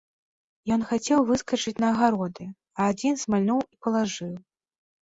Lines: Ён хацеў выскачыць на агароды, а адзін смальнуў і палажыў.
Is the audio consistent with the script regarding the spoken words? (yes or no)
yes